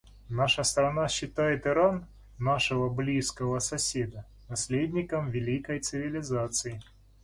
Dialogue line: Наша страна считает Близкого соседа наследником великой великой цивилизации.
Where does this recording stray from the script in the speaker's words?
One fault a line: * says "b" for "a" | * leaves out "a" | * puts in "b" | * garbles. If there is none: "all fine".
* puts in "Иран нашего"
* leaves out "великой"